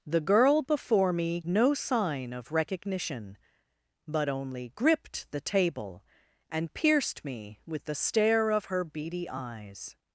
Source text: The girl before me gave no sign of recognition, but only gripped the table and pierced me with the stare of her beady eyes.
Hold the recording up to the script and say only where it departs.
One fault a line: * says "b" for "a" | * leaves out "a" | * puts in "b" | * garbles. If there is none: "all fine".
* leaves out "gave"